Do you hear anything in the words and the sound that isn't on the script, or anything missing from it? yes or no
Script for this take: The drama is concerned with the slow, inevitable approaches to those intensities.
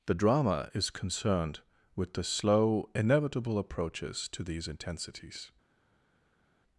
yes